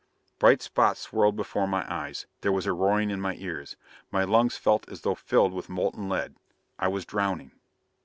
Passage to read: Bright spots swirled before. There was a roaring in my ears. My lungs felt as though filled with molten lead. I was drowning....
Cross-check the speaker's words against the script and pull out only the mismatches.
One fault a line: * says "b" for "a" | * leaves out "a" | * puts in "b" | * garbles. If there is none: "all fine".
* puts in "my eyes"